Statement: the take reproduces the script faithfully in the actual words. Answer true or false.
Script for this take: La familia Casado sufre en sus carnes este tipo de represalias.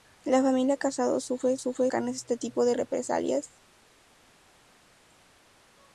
false